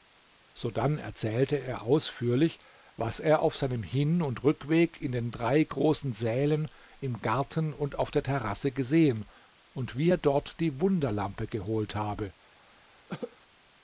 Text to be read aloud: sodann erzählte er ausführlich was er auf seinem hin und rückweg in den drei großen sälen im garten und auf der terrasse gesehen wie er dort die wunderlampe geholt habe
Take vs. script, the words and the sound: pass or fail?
fail